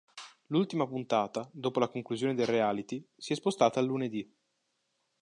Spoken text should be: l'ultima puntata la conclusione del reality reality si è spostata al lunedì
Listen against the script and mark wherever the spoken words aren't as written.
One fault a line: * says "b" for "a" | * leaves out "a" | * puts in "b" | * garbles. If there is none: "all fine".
* puts in "dopo"
* leaves out "reality"